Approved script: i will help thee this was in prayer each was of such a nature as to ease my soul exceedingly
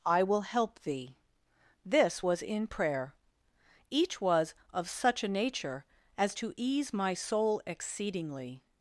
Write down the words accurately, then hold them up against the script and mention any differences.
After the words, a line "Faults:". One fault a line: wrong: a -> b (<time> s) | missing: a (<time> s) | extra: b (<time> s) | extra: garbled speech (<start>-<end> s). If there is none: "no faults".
i will help thee this was in prayer each was of such a nature as to ease my soul exceedingly
Faults:
no faults